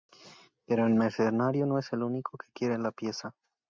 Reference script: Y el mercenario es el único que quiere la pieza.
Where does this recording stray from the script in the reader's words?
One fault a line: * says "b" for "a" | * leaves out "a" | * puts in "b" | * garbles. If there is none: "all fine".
* says "Pero" for "Y"
* puts in "no"